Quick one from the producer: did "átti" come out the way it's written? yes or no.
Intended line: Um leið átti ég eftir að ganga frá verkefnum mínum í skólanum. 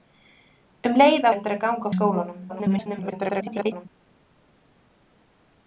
no